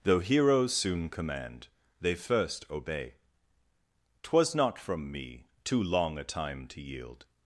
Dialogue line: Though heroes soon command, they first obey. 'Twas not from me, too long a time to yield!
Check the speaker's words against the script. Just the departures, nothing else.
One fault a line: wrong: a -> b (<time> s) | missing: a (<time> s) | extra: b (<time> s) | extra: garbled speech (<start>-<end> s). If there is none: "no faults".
no faults